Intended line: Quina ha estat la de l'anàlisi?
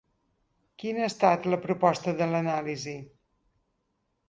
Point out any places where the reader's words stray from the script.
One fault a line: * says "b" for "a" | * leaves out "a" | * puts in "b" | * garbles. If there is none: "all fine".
* puts in "proposta"